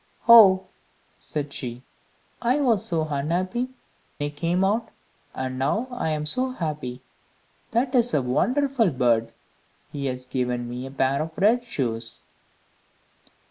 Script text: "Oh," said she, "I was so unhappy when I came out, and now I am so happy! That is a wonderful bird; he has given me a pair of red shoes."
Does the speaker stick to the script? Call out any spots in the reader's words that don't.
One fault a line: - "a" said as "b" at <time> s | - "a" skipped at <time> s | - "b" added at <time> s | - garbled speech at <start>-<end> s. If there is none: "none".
- "when" skipped at 3.7 s